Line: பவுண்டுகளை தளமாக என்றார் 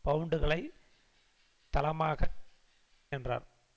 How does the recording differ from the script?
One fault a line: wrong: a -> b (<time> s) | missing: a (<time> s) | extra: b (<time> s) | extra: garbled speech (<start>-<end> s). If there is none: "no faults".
no faults